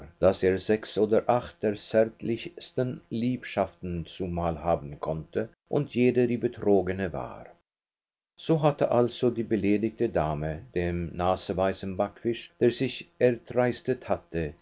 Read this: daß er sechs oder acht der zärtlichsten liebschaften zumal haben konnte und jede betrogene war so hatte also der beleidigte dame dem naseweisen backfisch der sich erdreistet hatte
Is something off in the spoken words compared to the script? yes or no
yes